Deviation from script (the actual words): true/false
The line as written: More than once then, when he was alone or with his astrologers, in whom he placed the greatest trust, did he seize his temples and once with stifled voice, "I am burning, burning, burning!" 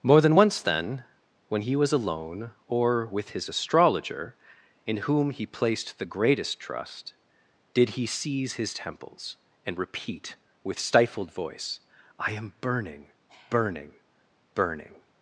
true